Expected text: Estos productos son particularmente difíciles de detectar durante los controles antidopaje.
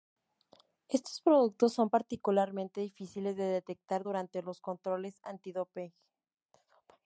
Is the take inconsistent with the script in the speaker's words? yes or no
no